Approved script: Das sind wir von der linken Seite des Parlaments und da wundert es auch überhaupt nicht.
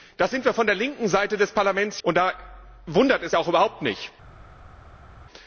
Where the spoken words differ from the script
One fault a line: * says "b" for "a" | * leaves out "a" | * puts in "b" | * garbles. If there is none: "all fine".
all fine